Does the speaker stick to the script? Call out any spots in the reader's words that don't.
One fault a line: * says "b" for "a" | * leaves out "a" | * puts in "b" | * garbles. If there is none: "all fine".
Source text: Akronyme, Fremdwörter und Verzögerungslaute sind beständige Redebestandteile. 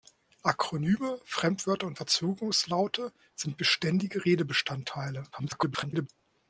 * garbles